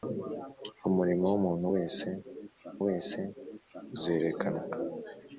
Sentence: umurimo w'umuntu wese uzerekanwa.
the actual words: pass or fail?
fail